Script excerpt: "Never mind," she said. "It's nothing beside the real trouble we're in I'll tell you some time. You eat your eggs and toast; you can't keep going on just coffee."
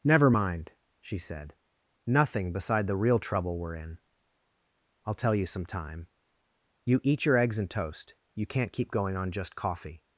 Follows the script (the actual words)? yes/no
no